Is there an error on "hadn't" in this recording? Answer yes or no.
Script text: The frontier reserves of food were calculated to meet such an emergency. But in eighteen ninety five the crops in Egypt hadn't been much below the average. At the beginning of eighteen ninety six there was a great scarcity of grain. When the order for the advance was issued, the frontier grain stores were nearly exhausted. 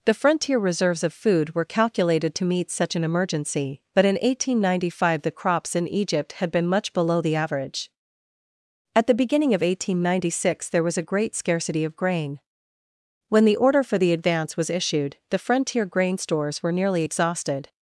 yes